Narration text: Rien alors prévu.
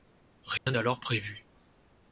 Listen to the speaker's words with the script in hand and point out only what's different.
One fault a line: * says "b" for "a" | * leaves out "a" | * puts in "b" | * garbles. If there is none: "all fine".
all fine